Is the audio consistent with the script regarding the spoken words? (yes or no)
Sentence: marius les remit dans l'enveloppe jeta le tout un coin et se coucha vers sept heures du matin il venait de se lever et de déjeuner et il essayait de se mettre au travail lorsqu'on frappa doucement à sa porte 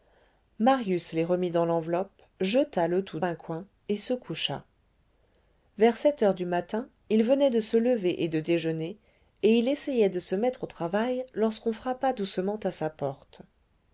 yes